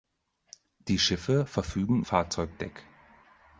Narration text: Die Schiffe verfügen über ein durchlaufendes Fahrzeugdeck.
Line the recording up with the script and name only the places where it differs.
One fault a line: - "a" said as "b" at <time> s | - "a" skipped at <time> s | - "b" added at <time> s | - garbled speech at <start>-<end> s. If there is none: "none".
- "über ein durchlaufendes" skipped at 2.0 s